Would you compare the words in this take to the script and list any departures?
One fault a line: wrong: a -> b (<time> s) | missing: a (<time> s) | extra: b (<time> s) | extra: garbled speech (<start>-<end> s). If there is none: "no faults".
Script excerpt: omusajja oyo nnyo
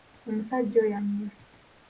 no faults